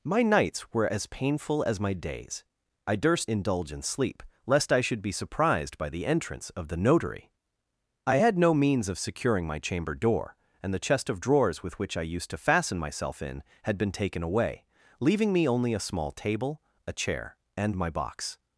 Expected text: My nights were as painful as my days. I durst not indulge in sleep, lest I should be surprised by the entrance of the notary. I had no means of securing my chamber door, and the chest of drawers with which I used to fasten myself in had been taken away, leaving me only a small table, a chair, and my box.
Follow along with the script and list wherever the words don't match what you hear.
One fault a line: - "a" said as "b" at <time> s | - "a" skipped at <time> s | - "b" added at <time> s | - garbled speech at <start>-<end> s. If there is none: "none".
- "not" skipped at 3.3 s